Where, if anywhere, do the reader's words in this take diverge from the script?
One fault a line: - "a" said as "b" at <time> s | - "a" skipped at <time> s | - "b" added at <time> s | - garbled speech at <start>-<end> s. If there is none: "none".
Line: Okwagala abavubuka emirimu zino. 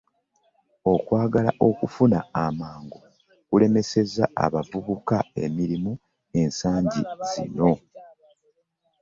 - "okufuna amangu kulemesezza" added at 1.7 s
- "ensangi" added at 6.4 s